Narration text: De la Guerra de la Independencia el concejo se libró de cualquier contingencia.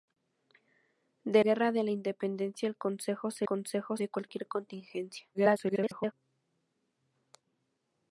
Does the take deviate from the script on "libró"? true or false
true